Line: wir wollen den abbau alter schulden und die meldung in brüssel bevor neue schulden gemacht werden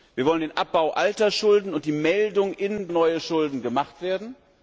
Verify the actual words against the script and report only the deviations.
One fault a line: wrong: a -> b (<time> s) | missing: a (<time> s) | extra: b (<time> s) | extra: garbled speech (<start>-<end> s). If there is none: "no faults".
missing: brüssel bevor (2.9 s)